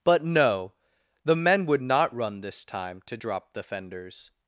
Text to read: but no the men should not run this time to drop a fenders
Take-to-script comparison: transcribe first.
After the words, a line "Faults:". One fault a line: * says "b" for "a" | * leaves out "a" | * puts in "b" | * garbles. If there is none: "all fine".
but no the men would not run this time to drop the fenders
Faults:
* says "would" for "should"
* says "the" for "a"